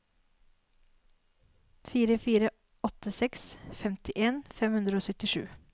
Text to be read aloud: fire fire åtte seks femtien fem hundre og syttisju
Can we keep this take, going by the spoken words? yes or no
yes